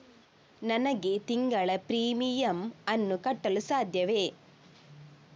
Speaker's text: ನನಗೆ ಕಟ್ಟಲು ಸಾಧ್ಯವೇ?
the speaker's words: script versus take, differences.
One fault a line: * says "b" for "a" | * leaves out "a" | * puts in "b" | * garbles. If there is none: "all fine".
* puts in "ತಿಂಗಳ ಪ್ರೀಮಿಯಮ್ ಅನ್ನು"